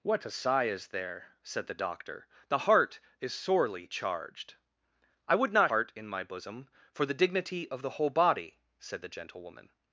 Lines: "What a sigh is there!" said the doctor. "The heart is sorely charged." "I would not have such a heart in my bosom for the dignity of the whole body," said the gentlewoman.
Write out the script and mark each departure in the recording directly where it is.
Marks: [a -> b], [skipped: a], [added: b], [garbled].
"What a sigh is there!" said the doctor. "The heart is sorely charged." "I would not [skipped: have such a] heart in my bosom for the dignity of the whole body," said the gentlewoman.